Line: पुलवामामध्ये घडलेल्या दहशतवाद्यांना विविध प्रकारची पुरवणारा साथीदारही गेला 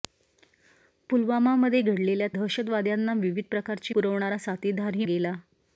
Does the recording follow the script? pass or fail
pass